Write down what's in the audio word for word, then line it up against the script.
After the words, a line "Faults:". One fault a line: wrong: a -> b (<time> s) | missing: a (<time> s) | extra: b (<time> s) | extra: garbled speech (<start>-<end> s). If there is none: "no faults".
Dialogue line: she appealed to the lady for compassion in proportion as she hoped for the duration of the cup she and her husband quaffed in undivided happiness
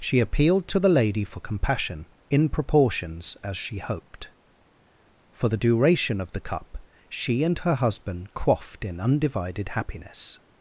she appealed to the lady for compassion in proportions as she hoped for the duration of the cup she and her husband quaffed in undivided happiness
Faults:
wrong: proportion -> proportions (2.5 s)